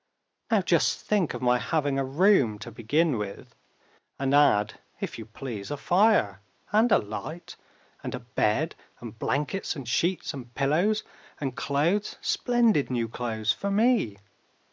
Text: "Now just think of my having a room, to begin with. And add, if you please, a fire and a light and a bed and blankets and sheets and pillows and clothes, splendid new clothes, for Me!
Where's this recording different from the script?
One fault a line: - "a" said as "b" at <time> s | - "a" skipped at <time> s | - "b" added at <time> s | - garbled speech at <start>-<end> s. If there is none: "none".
none